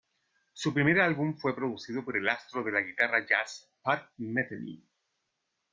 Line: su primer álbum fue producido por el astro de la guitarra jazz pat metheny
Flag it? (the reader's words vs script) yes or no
no